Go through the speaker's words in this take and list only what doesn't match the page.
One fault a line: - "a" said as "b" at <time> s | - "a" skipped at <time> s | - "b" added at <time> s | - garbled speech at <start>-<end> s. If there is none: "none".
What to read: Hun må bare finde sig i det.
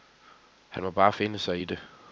- "Hun" said as "Han" at 0.7 s